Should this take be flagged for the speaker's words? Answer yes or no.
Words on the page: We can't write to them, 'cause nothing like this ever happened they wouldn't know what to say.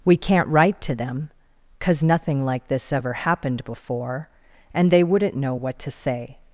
yes